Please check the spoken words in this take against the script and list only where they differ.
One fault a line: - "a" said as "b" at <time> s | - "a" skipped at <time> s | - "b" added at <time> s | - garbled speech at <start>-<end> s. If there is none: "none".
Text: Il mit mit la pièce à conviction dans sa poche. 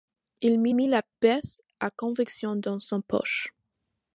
none